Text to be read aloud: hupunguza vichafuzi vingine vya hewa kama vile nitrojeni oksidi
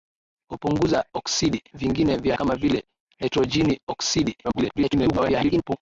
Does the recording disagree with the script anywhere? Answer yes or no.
yes